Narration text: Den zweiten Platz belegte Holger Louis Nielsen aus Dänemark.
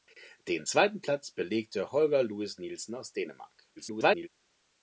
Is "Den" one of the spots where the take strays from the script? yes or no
no